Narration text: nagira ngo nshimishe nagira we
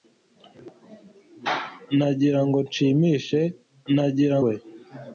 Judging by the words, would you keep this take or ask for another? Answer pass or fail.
pass